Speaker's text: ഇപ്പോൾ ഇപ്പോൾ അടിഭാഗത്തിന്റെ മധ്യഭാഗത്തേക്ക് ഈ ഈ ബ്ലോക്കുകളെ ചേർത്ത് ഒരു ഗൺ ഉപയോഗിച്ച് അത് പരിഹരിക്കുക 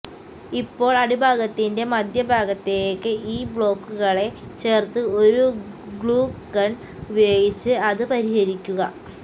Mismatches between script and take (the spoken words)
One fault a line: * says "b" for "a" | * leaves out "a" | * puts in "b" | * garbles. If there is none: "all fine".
* leaves out "ഇപ്പോൾ"
* leaves out "ഈ"
* puts in "ഗ്ലൂ"